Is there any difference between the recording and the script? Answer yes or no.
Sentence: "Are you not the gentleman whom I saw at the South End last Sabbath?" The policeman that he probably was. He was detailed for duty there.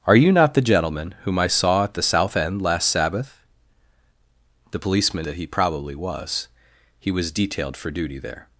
no